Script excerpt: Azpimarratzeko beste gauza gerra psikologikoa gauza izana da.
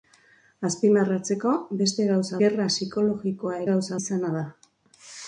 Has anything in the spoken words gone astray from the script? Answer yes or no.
no